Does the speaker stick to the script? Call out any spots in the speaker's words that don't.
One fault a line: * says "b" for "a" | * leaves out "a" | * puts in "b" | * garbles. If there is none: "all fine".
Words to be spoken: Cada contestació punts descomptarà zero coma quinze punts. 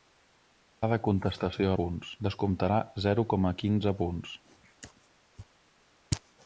all fine